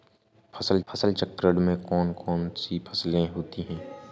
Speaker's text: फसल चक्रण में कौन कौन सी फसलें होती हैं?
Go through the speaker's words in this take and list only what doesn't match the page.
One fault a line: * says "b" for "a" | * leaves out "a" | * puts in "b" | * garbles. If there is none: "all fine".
* puts in "फसल"